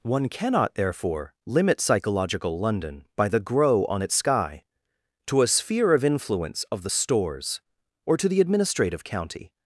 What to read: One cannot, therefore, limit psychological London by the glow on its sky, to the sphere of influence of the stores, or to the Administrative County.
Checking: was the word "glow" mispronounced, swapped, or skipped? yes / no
yes